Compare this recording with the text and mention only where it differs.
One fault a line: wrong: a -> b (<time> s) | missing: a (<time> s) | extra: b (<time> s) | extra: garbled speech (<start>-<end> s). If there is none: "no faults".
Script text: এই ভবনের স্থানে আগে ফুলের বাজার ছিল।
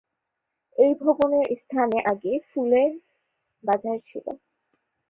no faults